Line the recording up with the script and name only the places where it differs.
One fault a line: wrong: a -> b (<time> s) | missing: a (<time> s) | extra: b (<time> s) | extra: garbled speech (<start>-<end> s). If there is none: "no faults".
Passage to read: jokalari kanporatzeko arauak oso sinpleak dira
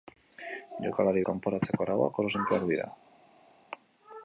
no faults